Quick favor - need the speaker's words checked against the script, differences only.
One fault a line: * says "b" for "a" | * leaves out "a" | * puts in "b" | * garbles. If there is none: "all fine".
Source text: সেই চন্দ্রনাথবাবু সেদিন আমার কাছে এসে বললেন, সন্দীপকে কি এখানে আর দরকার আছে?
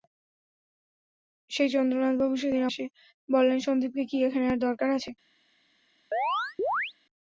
* leaves out "আমার কাছে"